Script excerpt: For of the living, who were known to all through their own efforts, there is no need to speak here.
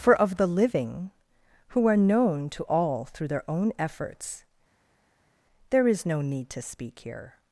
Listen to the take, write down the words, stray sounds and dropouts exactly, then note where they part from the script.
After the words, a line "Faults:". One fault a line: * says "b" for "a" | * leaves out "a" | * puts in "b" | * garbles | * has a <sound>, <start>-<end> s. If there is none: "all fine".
For of the living, who are known to all through their own efforts, there is no need to speak here.
Faults:
* says "are" for "were"